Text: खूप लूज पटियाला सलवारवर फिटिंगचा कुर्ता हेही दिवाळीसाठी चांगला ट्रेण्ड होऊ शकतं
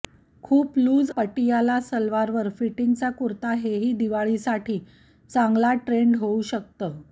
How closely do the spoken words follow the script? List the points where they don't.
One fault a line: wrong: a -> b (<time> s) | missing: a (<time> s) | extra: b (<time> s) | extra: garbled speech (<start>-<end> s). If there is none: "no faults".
no faults